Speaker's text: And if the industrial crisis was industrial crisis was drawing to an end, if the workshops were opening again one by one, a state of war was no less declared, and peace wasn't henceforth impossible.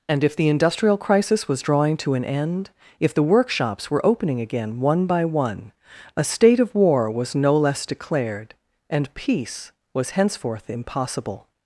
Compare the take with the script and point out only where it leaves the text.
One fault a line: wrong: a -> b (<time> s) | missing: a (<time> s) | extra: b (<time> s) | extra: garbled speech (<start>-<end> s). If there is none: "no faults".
missing: industrial crisis was (1.6 s)
wrong: wasn't -> was (9.9 s)